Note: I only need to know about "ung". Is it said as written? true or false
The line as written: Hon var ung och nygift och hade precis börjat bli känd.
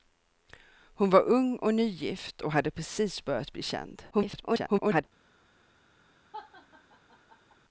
true